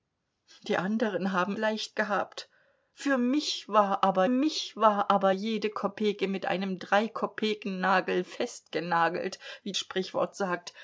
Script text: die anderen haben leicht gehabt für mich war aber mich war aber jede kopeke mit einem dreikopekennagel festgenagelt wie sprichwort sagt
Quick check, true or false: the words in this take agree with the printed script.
true